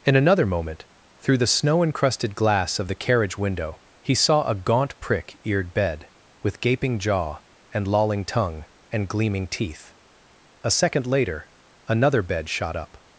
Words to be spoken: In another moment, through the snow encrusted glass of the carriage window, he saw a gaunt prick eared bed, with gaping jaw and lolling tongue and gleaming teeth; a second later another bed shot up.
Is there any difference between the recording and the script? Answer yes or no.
no